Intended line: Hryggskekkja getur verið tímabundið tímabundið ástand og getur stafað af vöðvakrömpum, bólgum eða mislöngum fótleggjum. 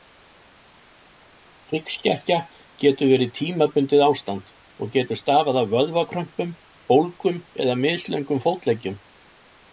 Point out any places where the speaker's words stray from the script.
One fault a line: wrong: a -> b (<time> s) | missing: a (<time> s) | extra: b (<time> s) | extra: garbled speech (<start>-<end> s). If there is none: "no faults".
missing: tímabundið (4.0 s)